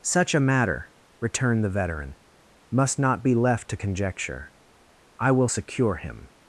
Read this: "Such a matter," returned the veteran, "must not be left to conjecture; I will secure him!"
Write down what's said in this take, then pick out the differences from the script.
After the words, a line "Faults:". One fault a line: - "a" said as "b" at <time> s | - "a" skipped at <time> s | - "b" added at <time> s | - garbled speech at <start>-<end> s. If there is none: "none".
"Such a matter," returned the veteran, "must not be left to conjecture; I will secure him!"
Faults:
none